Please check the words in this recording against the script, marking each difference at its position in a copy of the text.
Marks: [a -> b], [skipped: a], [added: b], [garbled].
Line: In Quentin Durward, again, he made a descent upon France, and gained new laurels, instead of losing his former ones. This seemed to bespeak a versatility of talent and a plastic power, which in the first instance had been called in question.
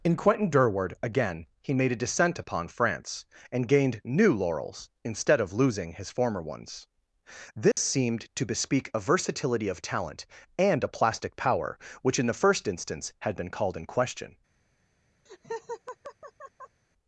In Quentin Durward, again, he made a descent upon France, and gained new laurels, instead of losing his former ones. This seemed to bespeak a versatility of talent and a plastic power, which in the first instance had been called in question.